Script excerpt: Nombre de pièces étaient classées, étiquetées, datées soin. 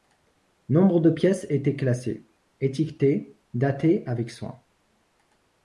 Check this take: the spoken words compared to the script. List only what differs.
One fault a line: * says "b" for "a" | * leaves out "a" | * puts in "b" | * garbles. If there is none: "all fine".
* puts in "avec"